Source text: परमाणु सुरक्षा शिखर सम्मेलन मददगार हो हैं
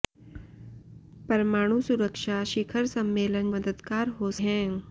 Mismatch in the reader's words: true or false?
false